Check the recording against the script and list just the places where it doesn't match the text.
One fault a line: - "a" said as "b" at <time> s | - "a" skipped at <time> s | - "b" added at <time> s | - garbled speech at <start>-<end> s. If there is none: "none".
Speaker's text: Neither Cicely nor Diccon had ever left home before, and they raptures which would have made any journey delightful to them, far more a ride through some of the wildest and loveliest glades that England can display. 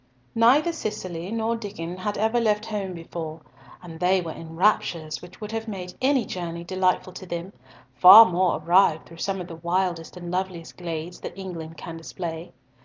- "were in" added at 4.2 s